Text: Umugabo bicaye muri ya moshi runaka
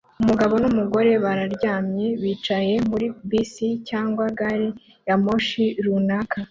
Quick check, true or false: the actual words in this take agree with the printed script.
false